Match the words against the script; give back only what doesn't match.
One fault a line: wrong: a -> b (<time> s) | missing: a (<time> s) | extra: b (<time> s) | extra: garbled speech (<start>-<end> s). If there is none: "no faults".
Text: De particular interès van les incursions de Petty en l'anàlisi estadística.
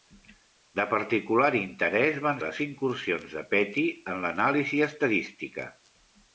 no faults